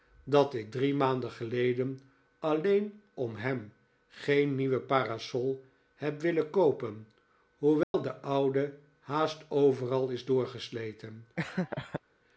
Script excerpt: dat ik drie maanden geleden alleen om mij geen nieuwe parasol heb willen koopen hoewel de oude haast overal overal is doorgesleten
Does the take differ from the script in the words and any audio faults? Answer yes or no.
yes